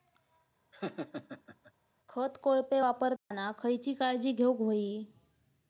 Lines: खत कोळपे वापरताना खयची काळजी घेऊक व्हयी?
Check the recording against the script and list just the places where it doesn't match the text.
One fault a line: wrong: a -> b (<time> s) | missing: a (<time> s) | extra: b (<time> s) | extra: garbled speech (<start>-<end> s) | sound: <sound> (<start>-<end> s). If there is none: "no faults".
sound: laugh (0.7-1.7 s)
sound: dropout (3.2-3.3 s)